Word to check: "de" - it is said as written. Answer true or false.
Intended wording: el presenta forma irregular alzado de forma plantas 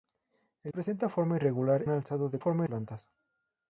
true